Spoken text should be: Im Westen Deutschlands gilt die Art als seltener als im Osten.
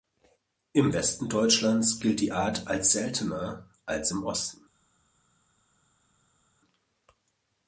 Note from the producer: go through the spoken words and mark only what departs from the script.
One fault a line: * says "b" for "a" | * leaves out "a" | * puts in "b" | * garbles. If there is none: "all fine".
all fine